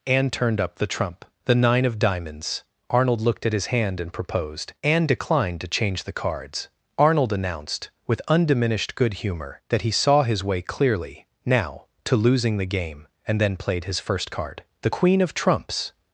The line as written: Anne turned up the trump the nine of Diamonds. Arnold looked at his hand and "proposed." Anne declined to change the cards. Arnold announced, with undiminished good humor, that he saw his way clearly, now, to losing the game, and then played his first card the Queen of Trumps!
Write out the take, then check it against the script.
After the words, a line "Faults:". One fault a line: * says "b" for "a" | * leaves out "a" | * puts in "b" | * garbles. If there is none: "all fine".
Anne turned up the trump the nine of Diamonds. Arnold looked at his hand and "proposed." Anne declined to change the cards. Arnold announced, with undiminished good humor, that he saw his way clearly, now, to losing the game, and then played his first card the Queen of Trumps!
Faults:
all fine